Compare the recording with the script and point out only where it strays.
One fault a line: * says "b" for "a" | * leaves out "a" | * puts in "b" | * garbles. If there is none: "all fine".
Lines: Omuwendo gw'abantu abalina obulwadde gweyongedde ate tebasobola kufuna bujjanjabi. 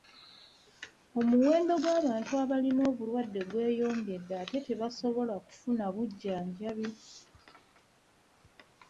all fine